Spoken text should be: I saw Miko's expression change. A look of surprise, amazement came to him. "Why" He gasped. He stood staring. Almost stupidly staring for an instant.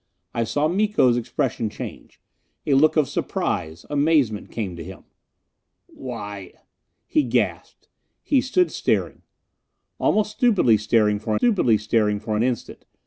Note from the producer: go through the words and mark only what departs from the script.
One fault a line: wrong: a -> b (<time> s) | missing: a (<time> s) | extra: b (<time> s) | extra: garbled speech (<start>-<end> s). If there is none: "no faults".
extra: stupidly staring for (11.4 s)